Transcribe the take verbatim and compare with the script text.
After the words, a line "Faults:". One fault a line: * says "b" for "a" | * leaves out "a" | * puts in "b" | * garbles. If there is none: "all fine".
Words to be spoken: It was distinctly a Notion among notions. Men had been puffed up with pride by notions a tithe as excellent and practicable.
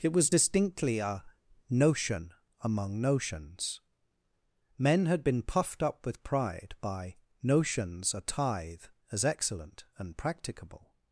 It was distinctly a Notion among notions. Men had been puffed up with pride by notions a tithe as excellent and practicable.
Faults:
all fine